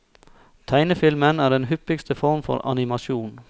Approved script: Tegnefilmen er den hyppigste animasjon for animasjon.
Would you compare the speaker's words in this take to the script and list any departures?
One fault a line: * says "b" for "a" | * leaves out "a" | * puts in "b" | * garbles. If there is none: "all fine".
* says "form" for "animasjon"